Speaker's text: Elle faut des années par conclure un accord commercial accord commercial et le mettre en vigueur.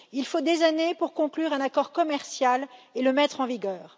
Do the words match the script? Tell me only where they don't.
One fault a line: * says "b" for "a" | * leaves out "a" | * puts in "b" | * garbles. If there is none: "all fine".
* says "Il" for "Elle"
* says "pour" for "par"
* leaves out "accord commercial"